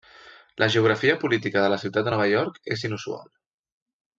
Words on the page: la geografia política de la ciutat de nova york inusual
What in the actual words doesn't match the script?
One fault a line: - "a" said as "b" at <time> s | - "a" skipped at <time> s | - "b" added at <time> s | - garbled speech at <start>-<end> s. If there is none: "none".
- "és" added at 2.8 s